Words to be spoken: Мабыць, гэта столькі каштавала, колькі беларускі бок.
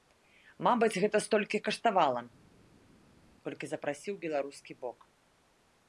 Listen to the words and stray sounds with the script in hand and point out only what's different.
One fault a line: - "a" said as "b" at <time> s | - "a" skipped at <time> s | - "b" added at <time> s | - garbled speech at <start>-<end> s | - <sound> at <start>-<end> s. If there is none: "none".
- "запрасіў" added at 3.7 s